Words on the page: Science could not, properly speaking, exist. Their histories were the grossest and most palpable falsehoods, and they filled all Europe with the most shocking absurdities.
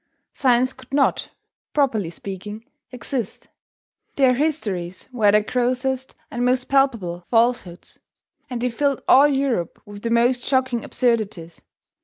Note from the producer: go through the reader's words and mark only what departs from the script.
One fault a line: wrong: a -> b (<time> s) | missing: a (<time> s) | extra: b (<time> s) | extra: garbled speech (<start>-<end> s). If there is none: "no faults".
no faults